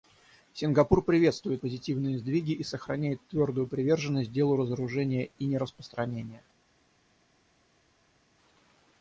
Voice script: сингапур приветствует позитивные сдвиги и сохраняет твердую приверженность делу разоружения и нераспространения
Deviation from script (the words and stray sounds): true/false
false